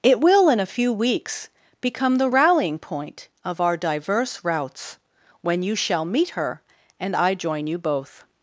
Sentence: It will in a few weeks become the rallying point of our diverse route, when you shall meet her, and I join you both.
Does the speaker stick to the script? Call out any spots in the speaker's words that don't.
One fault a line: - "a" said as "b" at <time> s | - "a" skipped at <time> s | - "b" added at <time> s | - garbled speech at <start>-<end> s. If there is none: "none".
- "route" said as "routes" at 4.4 s